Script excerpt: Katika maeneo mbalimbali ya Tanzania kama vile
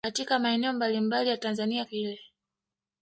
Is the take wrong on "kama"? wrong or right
wrong